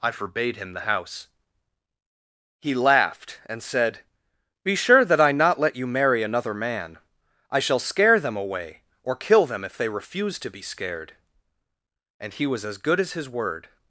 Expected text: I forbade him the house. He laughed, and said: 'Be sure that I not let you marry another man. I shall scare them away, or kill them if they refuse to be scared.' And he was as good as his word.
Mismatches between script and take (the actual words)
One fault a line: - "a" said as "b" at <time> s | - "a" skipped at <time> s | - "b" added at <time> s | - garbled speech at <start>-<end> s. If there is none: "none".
none